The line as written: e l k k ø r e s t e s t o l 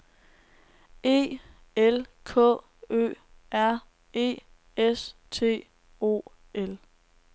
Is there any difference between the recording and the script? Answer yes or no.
yes